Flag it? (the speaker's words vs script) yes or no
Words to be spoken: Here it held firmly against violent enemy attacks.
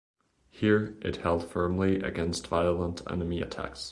no